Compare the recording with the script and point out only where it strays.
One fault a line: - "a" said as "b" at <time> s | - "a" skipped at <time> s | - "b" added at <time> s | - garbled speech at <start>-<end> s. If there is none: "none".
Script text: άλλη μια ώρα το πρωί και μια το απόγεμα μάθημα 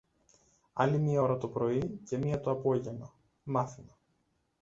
none